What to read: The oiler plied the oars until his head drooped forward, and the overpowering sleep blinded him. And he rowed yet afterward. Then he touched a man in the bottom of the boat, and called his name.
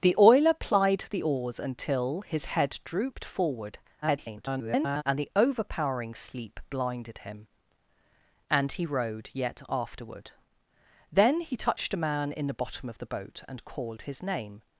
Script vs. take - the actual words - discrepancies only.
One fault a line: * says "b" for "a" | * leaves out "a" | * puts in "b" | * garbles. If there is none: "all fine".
* garbles